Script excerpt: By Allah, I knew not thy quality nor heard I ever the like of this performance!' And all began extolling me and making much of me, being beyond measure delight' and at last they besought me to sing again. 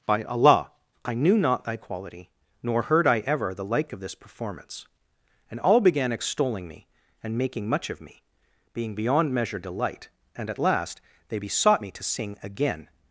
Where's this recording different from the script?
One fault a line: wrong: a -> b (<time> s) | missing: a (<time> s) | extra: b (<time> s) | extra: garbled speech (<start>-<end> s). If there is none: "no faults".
no faults